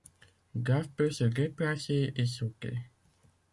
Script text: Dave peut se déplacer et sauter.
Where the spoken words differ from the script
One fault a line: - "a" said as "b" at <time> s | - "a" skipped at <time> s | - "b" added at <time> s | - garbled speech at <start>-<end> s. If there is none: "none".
none